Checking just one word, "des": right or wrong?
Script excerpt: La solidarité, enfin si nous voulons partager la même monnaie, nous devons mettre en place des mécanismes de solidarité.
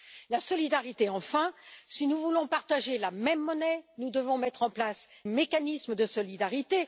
wrong